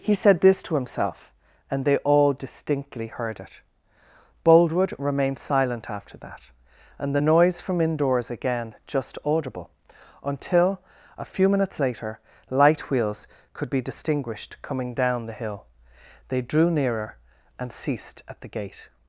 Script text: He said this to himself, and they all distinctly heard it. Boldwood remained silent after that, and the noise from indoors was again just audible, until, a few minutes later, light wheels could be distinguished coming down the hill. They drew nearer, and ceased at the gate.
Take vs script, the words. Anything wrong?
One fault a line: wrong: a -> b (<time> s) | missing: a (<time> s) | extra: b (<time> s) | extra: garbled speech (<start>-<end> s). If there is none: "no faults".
missing: was (8.3 s)